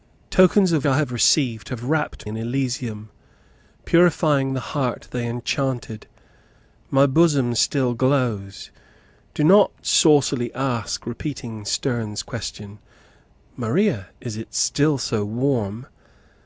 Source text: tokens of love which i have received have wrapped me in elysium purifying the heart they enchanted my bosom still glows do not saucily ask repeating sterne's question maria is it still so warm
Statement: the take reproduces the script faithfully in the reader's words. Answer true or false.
false